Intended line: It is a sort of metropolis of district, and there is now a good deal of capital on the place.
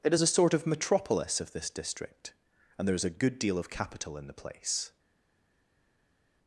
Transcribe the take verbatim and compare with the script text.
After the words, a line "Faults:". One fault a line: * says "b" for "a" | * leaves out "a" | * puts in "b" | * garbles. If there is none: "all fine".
It is a sort of metropolis of this district, and there is a good deal of capital in the place.
Faults:
* puts in "this"
* leaves out "now"
* says "in" for "on"